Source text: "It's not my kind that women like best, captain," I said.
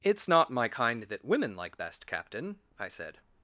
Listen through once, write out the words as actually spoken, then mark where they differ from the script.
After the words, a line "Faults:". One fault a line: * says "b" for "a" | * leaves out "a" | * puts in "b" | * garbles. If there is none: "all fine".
"It's not my kind that women like best, captain," I said.
Faults:
all fine